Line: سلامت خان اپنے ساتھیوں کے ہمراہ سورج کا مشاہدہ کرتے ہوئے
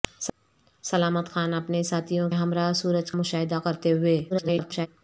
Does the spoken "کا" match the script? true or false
false